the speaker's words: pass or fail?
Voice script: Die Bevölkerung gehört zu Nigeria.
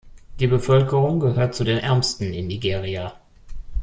fail